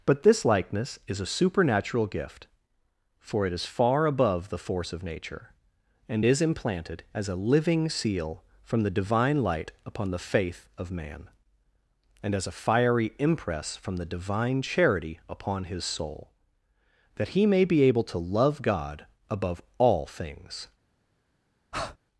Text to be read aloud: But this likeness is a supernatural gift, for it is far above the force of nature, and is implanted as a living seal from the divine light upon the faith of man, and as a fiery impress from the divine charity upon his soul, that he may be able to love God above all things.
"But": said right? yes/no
yes